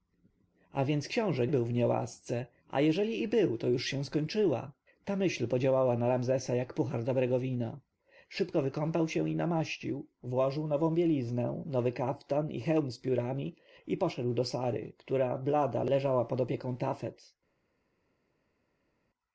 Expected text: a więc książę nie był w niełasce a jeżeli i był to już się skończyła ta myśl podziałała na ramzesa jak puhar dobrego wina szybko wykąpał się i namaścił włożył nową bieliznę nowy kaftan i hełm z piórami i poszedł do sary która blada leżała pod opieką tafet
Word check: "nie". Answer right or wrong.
wrong